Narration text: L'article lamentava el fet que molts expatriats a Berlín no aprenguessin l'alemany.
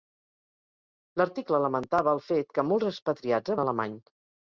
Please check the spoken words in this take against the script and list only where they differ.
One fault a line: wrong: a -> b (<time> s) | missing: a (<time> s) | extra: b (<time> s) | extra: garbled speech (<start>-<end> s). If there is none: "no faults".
missing: Berlín no aprenguessin (3.6 s)